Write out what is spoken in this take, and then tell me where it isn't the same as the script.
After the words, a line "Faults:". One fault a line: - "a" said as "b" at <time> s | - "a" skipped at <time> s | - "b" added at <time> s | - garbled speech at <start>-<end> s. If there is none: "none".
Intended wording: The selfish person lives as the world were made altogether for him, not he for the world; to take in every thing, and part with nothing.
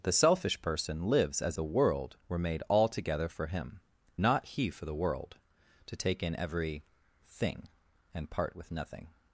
The selfish person lives as the world were made altogether for him, not he for the world; to take in every thing, and part with nothing.
Faults:
none